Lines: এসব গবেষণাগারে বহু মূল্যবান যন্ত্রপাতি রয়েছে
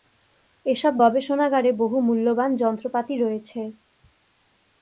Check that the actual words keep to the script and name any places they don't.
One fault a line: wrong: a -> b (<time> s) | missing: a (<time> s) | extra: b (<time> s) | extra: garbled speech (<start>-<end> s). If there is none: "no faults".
no faults